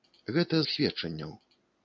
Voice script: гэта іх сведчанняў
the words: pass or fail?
pass